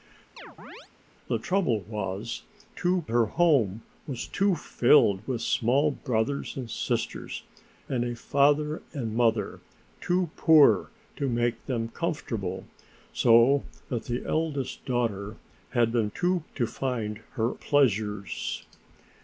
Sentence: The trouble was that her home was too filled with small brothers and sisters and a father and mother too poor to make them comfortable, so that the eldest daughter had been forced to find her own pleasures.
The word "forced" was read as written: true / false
false